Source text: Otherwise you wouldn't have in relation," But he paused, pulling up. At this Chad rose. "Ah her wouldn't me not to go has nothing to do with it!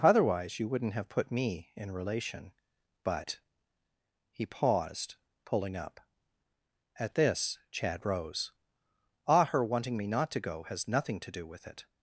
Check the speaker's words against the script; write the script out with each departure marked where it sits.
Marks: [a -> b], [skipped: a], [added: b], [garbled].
Otherwise you wouldn't have [added: put me] in relation," But he paused, pulling up. At this Chad rose. "Ah her [wouldn't -> wanting] me not to go has nothing to do with it!